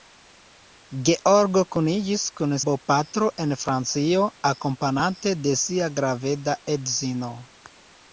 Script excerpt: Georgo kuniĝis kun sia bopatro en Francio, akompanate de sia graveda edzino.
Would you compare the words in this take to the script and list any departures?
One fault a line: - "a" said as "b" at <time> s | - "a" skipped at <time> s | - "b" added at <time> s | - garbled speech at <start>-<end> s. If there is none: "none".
- "sia" skipped at 2.6 s